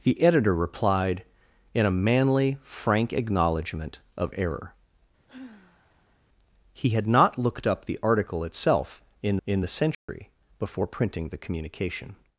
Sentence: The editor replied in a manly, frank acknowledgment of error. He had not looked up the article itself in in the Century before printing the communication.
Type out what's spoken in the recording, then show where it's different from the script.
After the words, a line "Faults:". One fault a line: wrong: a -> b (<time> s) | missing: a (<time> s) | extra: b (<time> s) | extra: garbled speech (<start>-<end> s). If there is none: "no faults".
The editor replied in a manly, frank acknowledgment of error. He had not looked up the article itself in in the Century before printing the communication.
Faults:
no faults